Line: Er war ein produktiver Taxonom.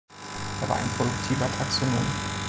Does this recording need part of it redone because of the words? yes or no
no